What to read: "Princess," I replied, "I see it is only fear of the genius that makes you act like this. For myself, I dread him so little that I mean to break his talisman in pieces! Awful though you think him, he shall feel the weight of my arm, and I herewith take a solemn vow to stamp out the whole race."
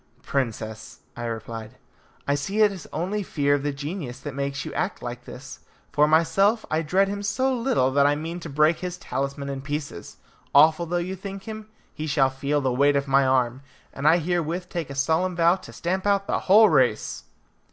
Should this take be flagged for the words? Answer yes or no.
no